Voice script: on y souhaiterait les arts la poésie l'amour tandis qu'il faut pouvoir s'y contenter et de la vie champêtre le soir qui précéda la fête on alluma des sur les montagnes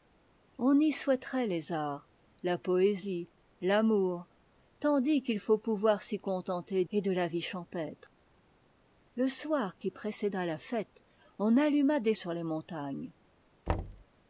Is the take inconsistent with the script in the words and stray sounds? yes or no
yes